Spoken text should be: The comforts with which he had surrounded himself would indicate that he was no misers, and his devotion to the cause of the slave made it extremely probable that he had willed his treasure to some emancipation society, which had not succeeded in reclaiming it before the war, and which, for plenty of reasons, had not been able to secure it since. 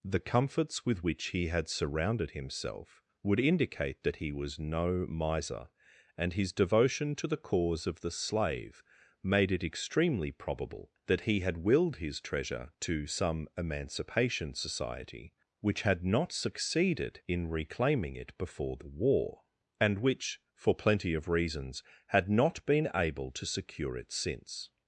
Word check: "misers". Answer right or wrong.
wrong